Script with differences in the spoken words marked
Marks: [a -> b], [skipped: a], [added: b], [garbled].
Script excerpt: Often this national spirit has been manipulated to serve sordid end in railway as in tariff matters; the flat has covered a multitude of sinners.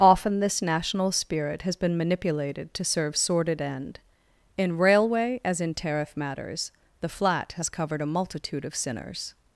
Often this national spirit has been manipulated to serve sordid end in railway as in tariff matters; the flat has covered a multitude of sinners.